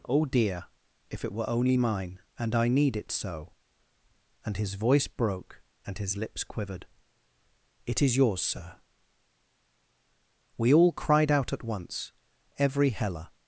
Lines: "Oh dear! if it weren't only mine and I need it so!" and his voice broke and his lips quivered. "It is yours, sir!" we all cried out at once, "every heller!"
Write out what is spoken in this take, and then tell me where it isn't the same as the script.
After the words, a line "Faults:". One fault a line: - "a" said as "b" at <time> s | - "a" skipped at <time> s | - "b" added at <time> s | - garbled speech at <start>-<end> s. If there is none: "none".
"Oh dear! if it were only mine and I need it so!" and his voice broke and his lips quivered. "It is yours, sir!" we all cried out at once, "every heller!"
Faults:
- "weren't" said as "were" at 1.3 s